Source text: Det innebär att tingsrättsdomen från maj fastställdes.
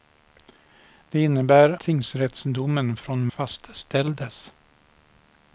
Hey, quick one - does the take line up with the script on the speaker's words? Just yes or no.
no